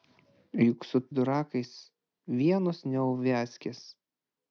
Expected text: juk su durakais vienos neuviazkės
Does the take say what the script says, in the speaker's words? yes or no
yes